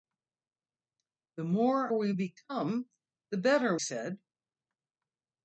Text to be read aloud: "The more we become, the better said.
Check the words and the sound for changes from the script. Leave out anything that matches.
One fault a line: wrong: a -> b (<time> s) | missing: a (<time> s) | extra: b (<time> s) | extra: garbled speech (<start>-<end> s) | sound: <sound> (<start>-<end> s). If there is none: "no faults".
no faults